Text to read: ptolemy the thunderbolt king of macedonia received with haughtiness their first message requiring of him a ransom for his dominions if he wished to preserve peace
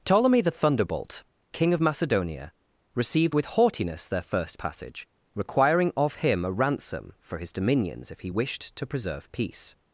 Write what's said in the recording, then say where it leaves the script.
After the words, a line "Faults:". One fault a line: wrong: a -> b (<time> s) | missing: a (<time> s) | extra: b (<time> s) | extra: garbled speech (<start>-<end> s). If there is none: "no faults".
ptolemy the thunderbolt king of macedonia received with haughtiness their first passage requiring of him a ransom for his dominions if he wished to preserve peace
Faults:
wrong: message -> passage (4.6 s)